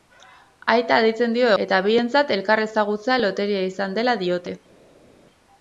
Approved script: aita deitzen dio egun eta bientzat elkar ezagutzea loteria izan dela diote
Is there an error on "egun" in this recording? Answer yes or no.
yes